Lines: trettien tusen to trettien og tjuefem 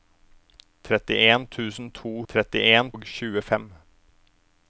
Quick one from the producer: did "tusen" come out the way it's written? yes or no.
yes